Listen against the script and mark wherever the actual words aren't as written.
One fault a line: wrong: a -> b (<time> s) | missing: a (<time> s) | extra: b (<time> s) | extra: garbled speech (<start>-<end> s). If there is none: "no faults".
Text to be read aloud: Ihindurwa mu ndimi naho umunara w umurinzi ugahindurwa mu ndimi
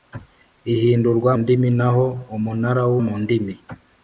missing: mu (1.3 s)
missing: umurinzi ugahindurwa (2.9 s)